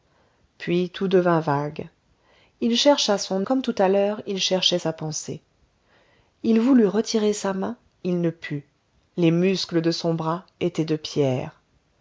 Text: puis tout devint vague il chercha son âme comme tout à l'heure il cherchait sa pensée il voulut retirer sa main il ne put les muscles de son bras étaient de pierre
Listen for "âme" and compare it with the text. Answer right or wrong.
wrong